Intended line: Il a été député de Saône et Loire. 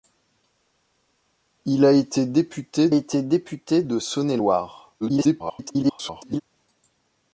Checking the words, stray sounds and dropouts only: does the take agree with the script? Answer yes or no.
no